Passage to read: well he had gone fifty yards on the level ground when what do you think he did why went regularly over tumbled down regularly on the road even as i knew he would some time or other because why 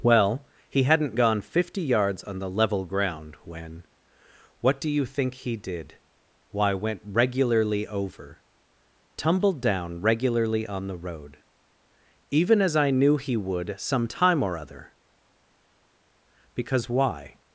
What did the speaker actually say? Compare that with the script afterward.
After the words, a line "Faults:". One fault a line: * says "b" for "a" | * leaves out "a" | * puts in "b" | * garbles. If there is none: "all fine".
well he hadn't gone fifty yards on the level ground when what do you think he did why went regularly over tumbled down regularly on the road even as i knew he would some time or other because why
Faults:
* says "hadn't" for "had"